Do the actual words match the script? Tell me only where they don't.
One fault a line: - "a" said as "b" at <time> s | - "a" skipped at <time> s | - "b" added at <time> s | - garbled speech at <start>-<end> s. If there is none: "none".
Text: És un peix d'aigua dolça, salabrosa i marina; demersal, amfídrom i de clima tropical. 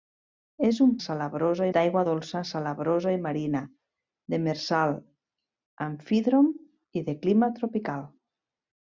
- "peix" said as "salabrosa" at 1.1 s